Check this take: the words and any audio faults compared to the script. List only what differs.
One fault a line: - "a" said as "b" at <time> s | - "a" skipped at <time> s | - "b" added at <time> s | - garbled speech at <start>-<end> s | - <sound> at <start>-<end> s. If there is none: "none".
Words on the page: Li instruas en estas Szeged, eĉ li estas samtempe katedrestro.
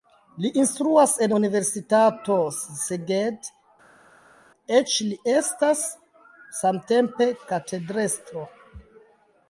- "estas" said as "universitato" at 1.3 s